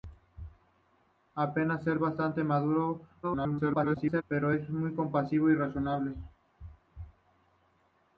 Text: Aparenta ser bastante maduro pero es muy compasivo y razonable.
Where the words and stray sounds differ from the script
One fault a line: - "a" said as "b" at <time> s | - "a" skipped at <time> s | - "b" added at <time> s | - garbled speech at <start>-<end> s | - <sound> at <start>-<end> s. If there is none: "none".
- garbled speech at 3.2-4.2 s